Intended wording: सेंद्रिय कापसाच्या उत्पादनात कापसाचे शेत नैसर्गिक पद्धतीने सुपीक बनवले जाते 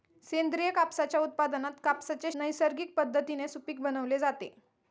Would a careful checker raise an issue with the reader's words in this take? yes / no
yes